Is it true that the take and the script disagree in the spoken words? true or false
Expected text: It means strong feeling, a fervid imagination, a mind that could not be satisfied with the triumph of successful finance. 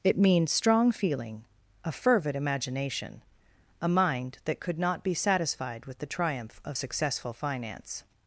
false